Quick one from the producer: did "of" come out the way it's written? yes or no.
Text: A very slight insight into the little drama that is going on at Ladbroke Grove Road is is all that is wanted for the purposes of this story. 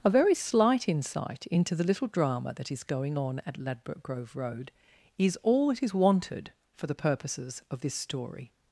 yes